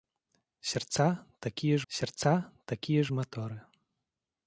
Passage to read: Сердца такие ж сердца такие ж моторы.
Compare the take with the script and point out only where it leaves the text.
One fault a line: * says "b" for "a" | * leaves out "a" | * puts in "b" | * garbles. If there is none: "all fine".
all fine